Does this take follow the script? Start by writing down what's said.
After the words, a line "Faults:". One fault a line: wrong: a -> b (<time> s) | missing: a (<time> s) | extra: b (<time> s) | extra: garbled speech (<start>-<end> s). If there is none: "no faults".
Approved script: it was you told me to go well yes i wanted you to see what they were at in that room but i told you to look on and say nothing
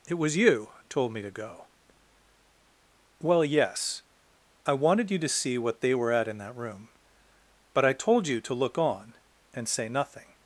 it was you told me to go well yes i wanted you to see what they were at in that room but i told you to look on and say nothing
Faults:
no faults